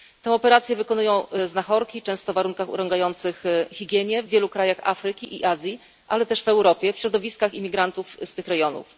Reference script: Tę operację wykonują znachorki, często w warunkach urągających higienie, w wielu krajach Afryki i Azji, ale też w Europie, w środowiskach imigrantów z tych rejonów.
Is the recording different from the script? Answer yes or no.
no